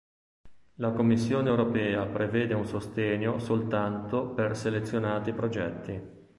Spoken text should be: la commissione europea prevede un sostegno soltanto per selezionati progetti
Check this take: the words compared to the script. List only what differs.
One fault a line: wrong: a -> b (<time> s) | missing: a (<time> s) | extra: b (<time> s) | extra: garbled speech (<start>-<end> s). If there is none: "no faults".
no faults